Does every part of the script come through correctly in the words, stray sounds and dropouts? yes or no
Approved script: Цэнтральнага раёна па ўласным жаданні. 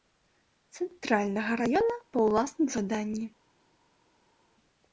yes